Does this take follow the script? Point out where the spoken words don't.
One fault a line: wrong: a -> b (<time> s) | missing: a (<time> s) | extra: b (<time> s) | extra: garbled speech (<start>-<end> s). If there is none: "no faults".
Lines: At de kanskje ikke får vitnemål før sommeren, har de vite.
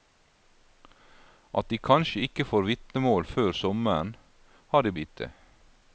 no faults